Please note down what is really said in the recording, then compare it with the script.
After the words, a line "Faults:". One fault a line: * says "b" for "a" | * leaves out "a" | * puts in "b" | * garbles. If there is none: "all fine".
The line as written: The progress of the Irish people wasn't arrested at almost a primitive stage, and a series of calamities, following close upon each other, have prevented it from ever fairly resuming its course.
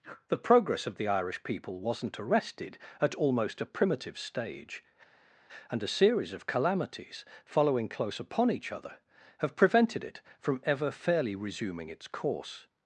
The progress of the Irish people wasn't arrested at almost a primitive stage, and a series of calamities, following close upon each other, have prevented it from ever fairly resuming its course.
Faults:
all fine